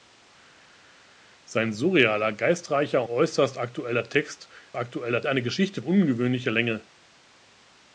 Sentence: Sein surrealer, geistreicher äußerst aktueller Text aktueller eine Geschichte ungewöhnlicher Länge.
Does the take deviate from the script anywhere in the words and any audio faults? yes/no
no